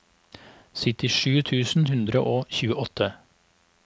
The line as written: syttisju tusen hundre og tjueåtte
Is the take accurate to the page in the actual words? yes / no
yes